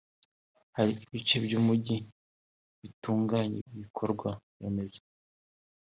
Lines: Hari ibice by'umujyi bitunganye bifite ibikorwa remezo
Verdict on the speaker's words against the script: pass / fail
fail